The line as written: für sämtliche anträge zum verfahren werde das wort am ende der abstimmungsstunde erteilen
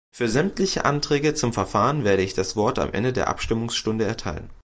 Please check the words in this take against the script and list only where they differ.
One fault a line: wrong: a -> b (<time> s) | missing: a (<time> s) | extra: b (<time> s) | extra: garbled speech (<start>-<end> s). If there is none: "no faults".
extra: ich (2.2 s)